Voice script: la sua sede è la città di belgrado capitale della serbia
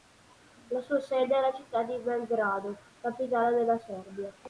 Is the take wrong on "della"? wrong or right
right